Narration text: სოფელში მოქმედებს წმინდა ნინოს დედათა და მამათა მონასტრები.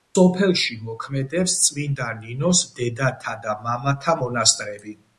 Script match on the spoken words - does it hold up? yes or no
yes